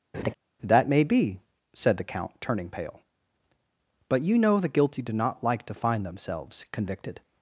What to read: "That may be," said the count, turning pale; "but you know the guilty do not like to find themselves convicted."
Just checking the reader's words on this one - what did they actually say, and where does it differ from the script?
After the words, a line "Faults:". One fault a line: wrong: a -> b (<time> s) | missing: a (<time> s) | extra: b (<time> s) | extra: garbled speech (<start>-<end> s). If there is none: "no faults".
"That may be," said the count, turning pale; "but you know the guilty do not like to find themselves convicted."
Faults:
no faults